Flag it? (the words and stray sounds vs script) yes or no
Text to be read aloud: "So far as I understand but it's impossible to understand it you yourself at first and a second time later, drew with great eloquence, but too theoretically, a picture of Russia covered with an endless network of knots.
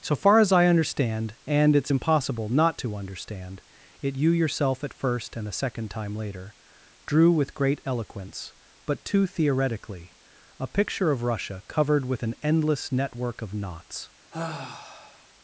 yes